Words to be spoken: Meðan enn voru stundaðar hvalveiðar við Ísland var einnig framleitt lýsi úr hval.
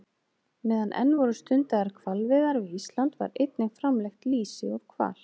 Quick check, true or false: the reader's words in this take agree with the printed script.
true